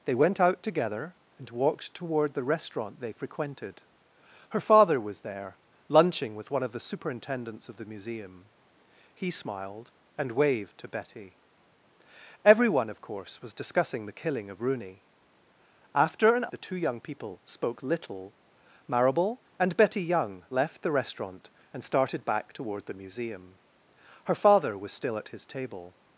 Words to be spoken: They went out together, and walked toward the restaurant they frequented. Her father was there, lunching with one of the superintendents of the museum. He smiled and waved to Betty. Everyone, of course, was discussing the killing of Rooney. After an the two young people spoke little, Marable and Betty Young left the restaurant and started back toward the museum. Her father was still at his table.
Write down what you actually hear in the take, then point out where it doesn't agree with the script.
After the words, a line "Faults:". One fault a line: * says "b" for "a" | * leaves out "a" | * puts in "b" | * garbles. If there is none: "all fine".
They went out together, and walked toward the restaurant they frequented. Her father was there, lunching with one of the superintendents of the museum. He smiled and waved to Betty. Everyone, of course, was discussing the killing of Rooney. After an the two young people spoke little, Marable and Betty Young left the restaurant and started back toward the museum. Her father was still at his table.
Faults:
all fine